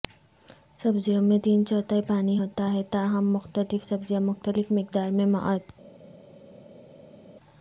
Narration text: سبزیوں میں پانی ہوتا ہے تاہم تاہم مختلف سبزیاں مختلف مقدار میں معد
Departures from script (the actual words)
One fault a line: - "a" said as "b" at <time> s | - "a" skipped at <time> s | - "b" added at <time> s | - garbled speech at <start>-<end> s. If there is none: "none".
- "تین چوتھائی" added at 1.4 s
- "تاہم" skipped at 3.3 s